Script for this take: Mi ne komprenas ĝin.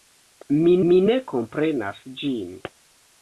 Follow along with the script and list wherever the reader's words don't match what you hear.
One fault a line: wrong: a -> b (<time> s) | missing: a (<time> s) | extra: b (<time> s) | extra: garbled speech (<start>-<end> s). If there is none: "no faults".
extra: mi (0.9 s)